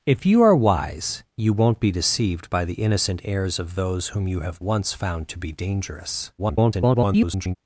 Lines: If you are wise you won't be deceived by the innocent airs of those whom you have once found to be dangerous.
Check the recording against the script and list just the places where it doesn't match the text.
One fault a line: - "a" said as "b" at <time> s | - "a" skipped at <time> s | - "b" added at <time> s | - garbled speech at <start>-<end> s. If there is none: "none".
- garbled speech at 6.4-7.6 s